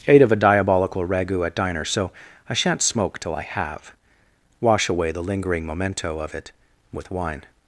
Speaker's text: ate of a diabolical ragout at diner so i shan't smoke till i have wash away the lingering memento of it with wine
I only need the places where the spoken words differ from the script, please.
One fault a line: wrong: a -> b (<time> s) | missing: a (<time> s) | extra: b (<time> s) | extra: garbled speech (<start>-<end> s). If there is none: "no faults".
no faults